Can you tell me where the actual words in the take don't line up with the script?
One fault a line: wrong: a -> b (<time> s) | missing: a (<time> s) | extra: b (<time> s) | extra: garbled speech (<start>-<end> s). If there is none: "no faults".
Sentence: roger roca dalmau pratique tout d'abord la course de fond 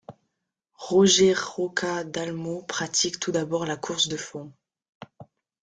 no faults